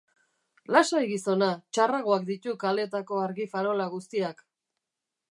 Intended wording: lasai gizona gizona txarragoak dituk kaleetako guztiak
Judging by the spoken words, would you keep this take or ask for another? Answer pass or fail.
fail